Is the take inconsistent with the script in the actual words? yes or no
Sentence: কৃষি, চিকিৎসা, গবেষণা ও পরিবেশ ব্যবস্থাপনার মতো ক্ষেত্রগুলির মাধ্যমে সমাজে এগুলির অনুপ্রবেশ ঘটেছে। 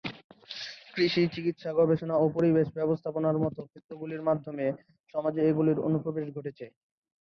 no